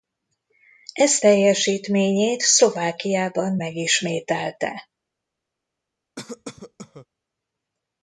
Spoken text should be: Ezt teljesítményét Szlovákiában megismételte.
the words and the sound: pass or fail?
fail